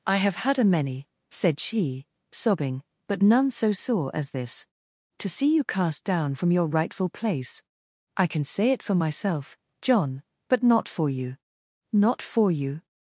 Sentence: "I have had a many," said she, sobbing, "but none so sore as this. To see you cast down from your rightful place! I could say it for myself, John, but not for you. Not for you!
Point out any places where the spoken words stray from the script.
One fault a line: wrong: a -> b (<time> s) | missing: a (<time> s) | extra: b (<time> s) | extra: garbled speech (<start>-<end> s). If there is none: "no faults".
wrong: could -> can (8.3 s)